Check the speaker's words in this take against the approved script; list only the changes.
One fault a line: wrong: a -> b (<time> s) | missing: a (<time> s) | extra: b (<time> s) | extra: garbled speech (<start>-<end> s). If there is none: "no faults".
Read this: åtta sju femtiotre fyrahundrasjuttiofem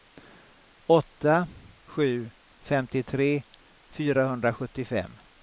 no faults